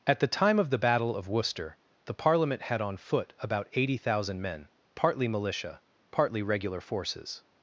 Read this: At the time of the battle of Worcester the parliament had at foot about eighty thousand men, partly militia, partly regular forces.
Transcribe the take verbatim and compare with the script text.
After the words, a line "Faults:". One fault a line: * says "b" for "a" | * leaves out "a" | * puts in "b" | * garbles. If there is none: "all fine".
At the time of the battle of Worcester the parliament had on foot about eighty thousand men, partly militia, partly regular forces.
Faults:
* says "on" for "at"